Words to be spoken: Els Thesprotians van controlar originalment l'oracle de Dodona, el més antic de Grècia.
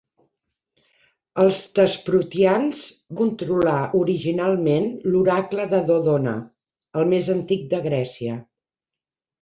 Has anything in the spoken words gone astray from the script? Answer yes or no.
yes